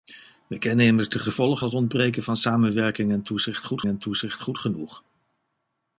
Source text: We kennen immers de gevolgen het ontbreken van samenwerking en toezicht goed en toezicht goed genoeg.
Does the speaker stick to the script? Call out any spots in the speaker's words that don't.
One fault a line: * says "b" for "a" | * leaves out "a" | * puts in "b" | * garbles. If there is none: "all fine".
all fine